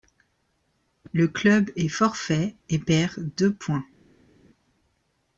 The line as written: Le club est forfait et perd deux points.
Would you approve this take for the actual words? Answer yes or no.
yes